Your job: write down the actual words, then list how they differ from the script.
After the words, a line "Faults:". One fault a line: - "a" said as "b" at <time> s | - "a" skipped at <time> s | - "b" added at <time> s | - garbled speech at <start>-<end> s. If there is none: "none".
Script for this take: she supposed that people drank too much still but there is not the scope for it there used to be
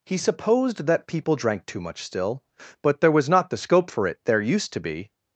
he supposed that people drank too much still but there was not the scope for it there used to be
Faults:
- "she" said as "he" at 0.1 s
- "is" said as "was" at 3.1 s